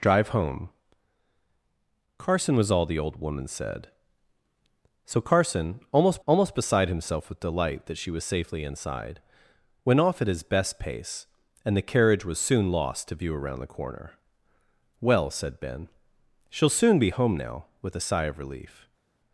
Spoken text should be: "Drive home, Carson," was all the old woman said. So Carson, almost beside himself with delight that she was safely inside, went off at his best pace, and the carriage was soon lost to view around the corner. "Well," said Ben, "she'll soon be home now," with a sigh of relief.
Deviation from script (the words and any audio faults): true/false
true